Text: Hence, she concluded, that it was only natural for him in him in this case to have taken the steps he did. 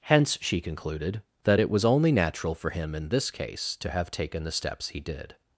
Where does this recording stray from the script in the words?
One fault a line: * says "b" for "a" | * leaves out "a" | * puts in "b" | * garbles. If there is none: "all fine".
* leaves out "him in"